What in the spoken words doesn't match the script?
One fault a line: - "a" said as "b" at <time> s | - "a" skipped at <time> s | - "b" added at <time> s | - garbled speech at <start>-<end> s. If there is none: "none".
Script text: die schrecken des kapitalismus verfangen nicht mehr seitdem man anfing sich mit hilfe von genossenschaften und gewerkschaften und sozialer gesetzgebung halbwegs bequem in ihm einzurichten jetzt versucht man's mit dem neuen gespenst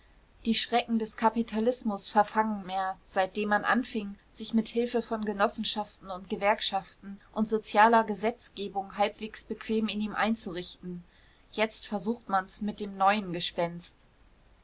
- "nicht" skipped at 2.6 s